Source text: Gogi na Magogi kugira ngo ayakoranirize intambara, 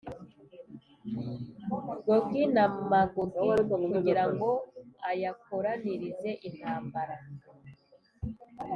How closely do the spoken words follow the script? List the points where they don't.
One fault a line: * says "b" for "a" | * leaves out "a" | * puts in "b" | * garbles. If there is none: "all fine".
all fine